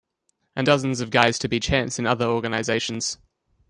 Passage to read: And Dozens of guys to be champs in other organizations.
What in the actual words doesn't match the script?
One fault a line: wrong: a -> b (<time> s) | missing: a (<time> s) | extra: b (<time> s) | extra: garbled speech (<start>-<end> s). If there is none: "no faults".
no faults